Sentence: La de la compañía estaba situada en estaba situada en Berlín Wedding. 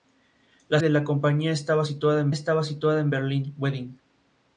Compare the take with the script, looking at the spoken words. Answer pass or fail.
pass